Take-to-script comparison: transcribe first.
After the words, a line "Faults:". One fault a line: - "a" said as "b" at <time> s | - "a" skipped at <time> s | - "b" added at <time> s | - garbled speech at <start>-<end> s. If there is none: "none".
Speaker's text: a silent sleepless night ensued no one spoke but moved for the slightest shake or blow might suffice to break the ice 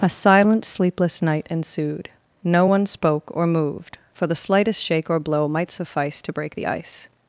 a silent sleepless night ensued no one spoke or moved for the slightest shake or blow might suffice to break the ice
Faults:
- "but" said as "or" at 3.3 s